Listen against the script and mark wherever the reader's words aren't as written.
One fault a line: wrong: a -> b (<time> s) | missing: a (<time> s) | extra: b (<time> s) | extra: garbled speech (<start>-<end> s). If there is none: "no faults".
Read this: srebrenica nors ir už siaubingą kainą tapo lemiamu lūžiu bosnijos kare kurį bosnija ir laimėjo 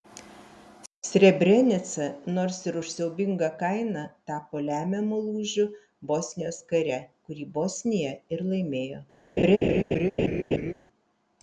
no faults